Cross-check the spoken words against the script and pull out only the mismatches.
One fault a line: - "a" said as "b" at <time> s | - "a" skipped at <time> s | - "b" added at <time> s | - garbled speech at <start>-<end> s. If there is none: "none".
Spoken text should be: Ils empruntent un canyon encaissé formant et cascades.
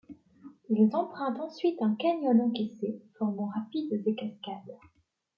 - "ensuite" added at 1.4 s
- "rapides" added at 3.5 s